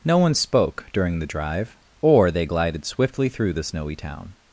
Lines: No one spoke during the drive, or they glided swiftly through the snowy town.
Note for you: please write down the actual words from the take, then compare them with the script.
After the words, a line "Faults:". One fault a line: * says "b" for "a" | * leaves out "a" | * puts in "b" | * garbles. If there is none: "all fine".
No one spoke during the drive, or they glided swiftly through the snowy town.
Faults:
all fine